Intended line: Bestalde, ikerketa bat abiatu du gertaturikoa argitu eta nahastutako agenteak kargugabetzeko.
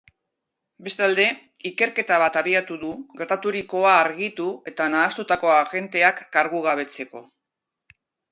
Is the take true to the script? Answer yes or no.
yes